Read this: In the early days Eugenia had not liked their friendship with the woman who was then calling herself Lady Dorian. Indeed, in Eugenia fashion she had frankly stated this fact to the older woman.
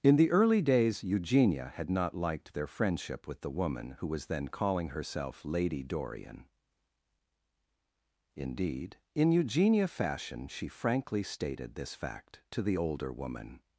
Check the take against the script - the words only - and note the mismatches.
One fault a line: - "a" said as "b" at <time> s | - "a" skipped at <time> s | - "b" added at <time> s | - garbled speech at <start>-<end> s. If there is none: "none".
- "had" skipped at 10.7 s